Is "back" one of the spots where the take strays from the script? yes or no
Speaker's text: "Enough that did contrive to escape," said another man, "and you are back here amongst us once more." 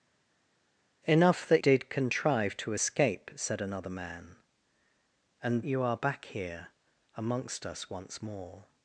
no